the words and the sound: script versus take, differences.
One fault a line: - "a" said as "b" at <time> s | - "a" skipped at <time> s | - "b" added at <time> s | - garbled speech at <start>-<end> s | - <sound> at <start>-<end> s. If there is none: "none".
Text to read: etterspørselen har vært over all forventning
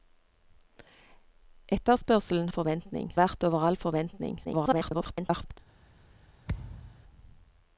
- "har" said as "forventning" at 2.5 s
- garbled speech at 4.4-5.6 s
- thud at 6.5-7.0 s